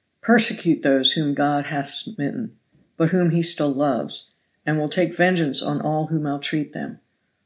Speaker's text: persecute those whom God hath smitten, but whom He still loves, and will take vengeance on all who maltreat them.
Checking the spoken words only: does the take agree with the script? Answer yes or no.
yes